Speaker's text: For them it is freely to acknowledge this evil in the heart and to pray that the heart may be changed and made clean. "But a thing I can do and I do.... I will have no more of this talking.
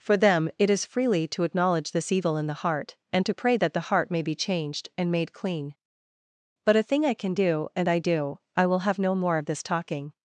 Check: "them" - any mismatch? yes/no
no